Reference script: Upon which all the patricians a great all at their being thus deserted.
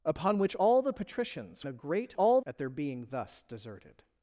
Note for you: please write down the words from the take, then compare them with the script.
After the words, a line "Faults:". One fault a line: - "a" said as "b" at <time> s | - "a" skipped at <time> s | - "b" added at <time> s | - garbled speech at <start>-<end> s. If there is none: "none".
Upon which all the patricians a great all at their being thus deserted.
Faults:
none